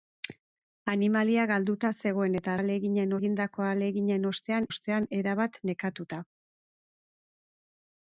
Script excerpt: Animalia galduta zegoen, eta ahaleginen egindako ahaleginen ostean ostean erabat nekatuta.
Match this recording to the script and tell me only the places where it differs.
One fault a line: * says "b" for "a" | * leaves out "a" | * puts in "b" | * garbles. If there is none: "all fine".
all fine